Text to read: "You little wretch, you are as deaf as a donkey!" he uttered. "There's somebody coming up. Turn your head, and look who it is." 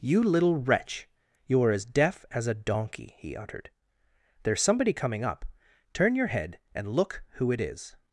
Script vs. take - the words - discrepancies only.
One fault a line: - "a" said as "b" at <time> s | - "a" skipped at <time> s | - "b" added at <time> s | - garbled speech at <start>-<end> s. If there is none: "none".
none